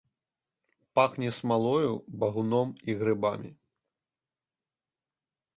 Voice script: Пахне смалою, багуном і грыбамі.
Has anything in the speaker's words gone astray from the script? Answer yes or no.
no